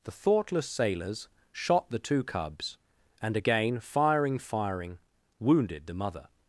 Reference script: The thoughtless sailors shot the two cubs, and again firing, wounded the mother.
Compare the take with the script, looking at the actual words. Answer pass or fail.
fail